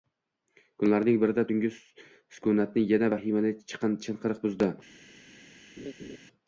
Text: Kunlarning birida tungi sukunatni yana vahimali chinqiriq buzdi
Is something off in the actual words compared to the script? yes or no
no